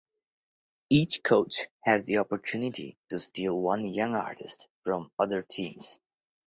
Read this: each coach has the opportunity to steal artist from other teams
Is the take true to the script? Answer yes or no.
no